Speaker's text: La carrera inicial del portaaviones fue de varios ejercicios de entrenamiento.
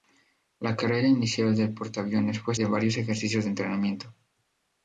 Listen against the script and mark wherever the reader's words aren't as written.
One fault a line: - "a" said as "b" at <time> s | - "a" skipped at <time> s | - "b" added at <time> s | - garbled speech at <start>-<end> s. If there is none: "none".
none